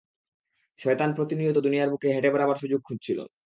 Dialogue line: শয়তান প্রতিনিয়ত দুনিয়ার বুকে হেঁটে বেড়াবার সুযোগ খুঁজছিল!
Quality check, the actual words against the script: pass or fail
pass